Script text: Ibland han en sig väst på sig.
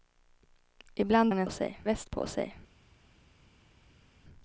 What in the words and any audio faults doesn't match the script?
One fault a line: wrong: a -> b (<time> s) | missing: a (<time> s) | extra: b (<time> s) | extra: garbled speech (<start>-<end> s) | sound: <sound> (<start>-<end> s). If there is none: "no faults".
no faults